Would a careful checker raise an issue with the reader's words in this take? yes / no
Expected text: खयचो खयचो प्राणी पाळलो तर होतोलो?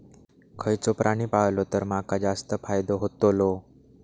yes